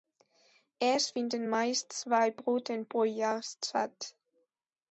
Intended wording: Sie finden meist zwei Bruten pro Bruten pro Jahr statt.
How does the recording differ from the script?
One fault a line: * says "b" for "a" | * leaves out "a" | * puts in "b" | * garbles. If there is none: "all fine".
* says "Es" for "Sie"
* leaves out "Bruten pro"